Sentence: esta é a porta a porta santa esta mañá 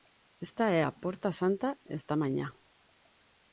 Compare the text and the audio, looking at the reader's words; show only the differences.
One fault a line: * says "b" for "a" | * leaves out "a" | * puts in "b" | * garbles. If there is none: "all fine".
* leaves out "a porta"